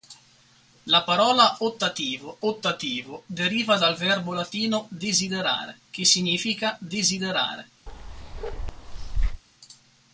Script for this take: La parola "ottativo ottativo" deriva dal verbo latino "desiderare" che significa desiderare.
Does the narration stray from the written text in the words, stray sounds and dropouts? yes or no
yes